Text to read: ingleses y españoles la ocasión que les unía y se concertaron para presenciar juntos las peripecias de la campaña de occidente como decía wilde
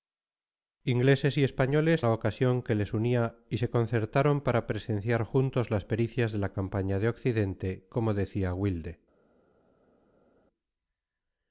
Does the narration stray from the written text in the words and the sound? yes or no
no